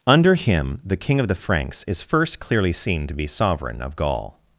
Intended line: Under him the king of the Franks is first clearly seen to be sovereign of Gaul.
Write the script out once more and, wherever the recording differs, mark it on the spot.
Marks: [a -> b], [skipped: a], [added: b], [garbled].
Under him the king of the Franks is first clearly seen to be sovereign of Gaul.